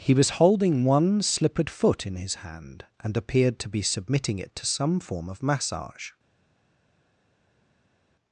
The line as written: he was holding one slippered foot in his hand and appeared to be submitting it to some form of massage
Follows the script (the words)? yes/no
yes